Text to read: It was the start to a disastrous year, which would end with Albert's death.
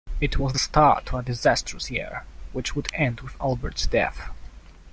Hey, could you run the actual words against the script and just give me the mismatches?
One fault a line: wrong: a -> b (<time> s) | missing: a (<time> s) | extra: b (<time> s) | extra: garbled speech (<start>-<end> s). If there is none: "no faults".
no faults